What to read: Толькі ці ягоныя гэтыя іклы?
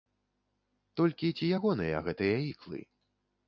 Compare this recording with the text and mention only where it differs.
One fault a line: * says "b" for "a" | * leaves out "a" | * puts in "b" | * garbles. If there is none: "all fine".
all fine